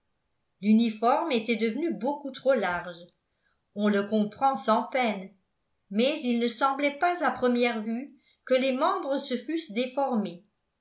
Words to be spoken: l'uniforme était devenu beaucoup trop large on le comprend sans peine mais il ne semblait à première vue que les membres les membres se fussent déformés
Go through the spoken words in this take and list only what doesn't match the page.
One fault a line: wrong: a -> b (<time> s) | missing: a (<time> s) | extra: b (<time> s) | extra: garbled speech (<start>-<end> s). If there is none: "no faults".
extra: pas (7.0 s)
missing: les membres (9.2 s)